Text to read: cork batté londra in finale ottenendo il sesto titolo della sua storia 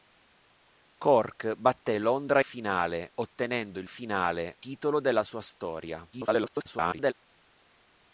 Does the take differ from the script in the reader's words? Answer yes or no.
yes